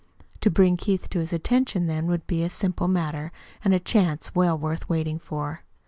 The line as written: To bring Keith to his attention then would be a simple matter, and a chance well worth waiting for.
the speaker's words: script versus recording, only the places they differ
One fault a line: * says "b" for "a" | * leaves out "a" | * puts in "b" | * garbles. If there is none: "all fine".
all fine